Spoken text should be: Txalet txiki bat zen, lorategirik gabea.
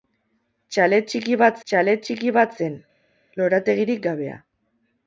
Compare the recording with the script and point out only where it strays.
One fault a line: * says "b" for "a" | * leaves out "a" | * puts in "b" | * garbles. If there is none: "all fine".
* puts in "txalet txiki bat"